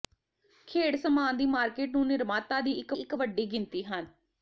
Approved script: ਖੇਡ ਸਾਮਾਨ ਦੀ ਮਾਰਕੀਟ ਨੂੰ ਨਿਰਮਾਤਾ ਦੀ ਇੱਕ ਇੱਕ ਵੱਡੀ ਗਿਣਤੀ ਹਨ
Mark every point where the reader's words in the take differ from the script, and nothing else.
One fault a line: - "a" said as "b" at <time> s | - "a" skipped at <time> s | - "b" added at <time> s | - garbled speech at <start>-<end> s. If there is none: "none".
none